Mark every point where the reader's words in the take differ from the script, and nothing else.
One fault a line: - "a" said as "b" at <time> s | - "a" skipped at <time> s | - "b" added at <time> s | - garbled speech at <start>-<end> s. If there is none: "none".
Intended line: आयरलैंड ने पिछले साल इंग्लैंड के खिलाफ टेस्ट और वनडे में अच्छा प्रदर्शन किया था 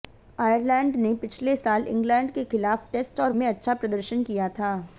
- "वनडे" skipped at 3.3 s